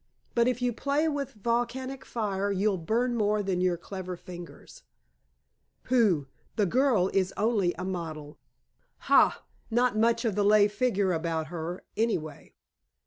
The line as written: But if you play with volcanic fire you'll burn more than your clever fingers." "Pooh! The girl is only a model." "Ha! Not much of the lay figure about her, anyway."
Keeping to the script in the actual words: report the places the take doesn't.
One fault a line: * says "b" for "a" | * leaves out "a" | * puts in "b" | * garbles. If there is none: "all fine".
all fine